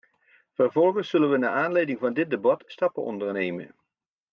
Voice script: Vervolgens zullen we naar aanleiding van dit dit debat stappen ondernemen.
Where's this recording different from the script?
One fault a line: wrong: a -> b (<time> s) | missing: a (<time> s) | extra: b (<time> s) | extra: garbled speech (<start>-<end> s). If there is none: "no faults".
missing: dit (2.3 s)